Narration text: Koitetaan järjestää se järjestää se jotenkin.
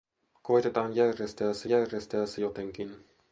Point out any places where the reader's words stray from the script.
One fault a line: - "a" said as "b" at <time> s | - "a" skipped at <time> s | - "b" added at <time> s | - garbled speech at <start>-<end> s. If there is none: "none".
none